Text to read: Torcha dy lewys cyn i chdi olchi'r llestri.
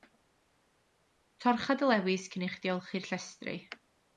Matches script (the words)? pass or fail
pass